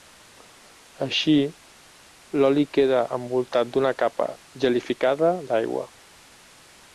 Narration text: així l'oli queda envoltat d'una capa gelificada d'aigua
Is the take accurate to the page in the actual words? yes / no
yes